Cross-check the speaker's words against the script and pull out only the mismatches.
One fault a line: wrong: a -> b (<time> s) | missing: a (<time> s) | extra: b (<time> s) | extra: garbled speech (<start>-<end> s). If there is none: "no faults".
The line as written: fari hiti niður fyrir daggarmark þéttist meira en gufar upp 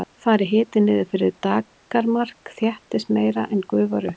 no faults